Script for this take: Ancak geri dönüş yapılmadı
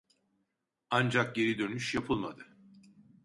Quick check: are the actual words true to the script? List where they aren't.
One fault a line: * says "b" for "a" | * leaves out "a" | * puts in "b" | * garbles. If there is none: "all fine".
all fine